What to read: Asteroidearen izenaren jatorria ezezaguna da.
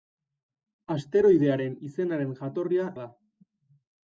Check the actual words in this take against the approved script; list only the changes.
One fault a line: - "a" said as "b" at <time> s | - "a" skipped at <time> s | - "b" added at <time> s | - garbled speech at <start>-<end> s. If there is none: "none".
- "ezezaguna" skipped at 2.9 s